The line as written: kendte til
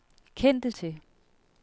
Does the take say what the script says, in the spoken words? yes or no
yes